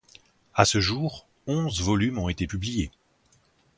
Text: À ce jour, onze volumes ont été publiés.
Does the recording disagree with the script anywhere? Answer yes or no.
no